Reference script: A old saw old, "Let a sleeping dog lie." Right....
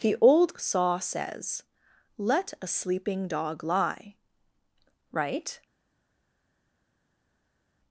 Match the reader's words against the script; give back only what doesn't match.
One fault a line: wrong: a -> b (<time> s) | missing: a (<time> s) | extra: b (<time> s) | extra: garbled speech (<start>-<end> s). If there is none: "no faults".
wrong: A -> The (0.0 s)
wrong: old -> says (1.0 s)